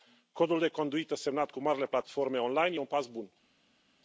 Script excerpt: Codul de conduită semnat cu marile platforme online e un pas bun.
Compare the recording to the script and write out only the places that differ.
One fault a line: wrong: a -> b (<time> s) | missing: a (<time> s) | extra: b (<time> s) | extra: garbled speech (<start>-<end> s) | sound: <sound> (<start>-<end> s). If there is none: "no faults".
no faults